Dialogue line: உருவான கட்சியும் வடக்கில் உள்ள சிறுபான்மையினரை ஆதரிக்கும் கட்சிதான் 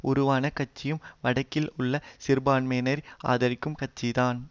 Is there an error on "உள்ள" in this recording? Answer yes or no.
no